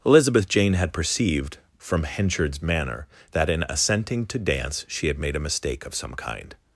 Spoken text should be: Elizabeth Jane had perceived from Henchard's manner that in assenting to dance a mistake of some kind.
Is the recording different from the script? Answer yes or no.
yes